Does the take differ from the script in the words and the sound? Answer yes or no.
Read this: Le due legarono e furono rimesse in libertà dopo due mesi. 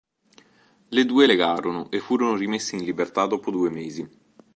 no